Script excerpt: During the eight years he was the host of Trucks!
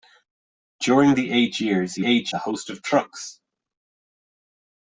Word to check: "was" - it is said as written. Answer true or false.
false